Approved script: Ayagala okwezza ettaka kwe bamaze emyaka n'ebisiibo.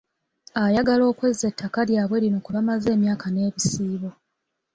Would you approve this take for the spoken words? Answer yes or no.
no